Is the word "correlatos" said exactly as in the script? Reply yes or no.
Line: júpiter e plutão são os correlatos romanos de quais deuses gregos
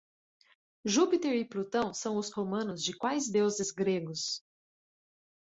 no